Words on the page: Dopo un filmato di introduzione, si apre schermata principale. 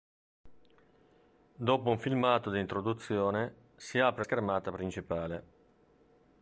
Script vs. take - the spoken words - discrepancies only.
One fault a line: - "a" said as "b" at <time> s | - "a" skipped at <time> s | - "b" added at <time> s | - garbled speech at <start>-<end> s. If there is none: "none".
none